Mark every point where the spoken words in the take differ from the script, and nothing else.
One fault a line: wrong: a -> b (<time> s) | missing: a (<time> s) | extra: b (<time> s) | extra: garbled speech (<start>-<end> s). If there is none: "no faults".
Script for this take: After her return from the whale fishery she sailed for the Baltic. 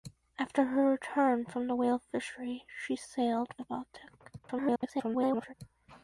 missing: for (3.5 s)
extra: garbled speech (4.4-5.5 s)